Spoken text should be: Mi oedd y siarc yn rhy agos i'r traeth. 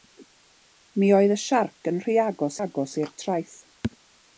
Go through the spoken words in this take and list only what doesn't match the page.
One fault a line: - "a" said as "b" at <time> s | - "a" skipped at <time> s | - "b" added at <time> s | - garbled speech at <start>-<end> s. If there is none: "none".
- "agos" added at 2.6 s